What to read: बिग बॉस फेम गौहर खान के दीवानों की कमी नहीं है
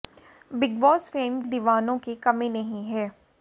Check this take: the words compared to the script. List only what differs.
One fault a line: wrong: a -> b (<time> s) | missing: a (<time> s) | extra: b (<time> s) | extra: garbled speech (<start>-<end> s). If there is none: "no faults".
missing: गौहर खान के (1.4 s)